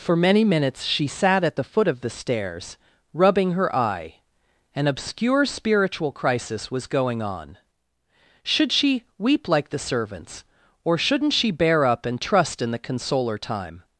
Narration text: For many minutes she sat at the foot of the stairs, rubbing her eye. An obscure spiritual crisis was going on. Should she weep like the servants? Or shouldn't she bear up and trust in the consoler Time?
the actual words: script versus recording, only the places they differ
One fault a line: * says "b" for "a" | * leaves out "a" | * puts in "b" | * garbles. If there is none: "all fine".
all fine